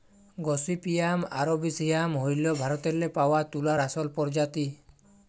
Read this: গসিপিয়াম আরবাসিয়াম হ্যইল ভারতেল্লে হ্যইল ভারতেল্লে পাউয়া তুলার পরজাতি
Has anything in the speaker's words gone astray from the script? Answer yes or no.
yes